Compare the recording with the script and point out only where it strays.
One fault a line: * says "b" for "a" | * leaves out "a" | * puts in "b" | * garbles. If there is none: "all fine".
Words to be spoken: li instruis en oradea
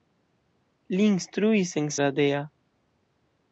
all fine